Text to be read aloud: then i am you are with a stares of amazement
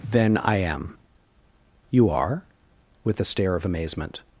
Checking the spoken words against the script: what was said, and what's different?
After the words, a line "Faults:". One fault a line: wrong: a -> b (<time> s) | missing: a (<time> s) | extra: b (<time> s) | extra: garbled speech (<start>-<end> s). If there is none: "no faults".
then i am you are with a stare of amazement
Faults:
wrong: stares -> stare (3.2 s)